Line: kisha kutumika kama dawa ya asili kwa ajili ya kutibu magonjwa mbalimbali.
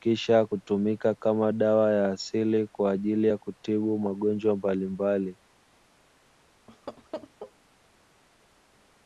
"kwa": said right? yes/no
yes